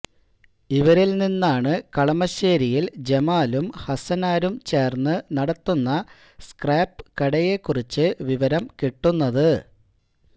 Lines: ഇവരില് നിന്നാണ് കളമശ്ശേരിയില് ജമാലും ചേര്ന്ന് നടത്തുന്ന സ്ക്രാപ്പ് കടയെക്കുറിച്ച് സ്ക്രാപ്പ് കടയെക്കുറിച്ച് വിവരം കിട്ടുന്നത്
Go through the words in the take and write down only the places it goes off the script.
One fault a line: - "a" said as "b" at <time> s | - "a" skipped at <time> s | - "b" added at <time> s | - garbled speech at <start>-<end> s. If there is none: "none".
- "ഹസനാരും" added at 3.8 s
- "സ്ക്രാപ്പ് കടയെക്കുറിച്ച്" skipped at 8.1 s